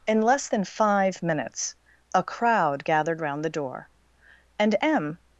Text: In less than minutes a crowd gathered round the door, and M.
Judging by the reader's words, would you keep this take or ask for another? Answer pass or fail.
fail